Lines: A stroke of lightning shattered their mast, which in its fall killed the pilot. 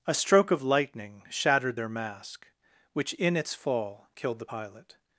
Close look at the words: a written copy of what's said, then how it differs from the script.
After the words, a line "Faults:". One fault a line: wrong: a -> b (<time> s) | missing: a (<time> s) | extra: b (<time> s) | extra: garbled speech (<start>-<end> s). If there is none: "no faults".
A stroke of lightning shattered their mask, which in its fall killed the pilot.
Faults:
wrong: mast -> mask (1.9 s)